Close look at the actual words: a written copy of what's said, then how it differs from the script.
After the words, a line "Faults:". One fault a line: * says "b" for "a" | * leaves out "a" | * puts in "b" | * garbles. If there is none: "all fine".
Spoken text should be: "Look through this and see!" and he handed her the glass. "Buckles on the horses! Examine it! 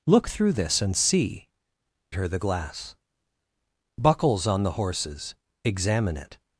"Look through this and see!" her the glass. "Buckles on the horses! Examine it!
Faults:
* leaves out "and he handed"